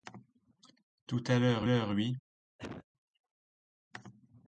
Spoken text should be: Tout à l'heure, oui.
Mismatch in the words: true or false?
true